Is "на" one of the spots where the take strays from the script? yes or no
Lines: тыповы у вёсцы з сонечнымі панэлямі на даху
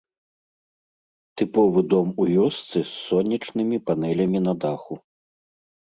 no